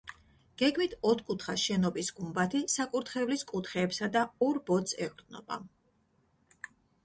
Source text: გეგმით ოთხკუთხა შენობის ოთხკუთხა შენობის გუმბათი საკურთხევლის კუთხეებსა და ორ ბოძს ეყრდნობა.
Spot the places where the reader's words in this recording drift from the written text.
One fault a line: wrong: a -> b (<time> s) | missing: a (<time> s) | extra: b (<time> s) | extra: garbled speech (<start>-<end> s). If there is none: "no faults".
missing: ოთხკუთხა შენობის (2.1 s)